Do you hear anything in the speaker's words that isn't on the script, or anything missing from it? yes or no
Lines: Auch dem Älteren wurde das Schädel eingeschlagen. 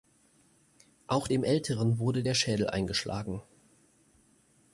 yes